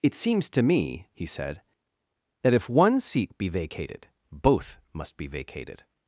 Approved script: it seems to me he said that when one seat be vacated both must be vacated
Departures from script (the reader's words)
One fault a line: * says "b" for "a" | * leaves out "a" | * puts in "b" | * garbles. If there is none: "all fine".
* says "if" for "when"